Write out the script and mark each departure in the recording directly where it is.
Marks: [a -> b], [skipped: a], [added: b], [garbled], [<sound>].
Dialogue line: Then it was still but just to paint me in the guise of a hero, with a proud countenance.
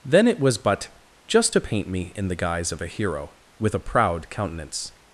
Then it was [skipped: still] but just to paint me in the guise of a hero, with a proud countenance.